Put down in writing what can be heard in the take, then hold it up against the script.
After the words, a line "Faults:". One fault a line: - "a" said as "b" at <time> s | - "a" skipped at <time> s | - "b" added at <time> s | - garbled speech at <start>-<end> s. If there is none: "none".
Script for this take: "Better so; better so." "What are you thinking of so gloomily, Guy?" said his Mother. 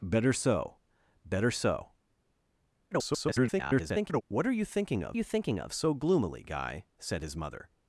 "Better so; better so." [garbled] "What are you thinking of you thinking of so gloomily, Guy?" said his Mother.
Faults:
- garbled speech at 2.9-4.2 s
- "you thinking of" added at 5.1 s